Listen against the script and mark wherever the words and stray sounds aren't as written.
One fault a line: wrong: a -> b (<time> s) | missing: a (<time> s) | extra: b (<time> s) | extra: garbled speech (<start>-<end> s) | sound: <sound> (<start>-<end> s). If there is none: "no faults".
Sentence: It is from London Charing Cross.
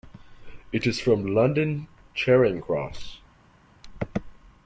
no faults